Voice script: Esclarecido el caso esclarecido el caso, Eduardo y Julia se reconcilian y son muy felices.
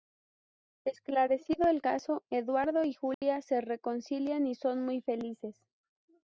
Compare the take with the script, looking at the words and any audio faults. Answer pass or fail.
fail